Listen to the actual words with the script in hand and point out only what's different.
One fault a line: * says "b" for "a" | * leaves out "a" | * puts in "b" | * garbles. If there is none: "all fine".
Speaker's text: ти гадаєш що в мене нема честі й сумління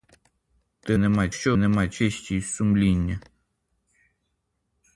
* says "нема" for "гадаєш"
* leaves out "мене"